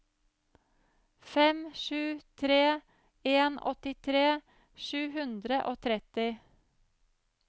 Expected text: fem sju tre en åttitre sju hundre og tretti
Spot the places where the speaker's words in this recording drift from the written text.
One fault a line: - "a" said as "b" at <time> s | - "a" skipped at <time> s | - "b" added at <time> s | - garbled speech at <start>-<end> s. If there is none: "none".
none